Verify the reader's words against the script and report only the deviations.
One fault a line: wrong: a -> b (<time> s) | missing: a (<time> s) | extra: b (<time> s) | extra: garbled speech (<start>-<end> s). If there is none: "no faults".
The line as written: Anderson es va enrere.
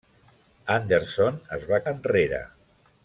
no faults